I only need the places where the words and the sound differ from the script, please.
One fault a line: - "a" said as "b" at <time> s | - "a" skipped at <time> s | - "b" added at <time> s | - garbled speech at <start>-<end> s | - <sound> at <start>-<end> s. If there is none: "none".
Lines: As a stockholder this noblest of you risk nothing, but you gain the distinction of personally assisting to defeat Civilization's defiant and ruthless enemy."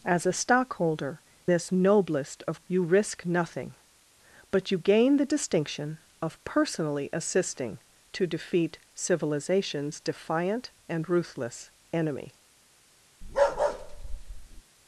- bark at 13.2-14.6 s